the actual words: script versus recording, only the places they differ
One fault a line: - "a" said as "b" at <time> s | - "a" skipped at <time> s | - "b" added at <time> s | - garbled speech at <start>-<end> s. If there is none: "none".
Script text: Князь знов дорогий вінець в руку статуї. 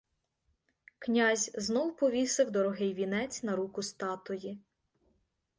- "повісив" added at 2.0 s
- "в" said as "на" at 3.4 s